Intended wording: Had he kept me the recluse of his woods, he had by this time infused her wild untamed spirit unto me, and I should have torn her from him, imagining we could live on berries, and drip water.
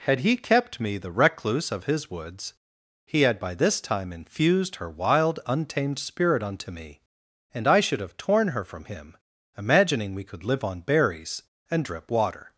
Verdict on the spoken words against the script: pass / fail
pass